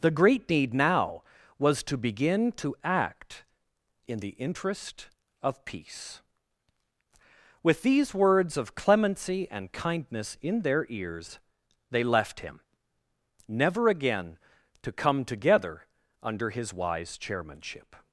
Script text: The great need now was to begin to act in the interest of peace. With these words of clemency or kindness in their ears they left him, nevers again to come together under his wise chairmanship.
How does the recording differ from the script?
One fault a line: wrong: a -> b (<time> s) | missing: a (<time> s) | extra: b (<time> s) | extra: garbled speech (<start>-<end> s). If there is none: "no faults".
wrong: or -> and (9.5 s)
wrong: nevers -> never (13.5 s)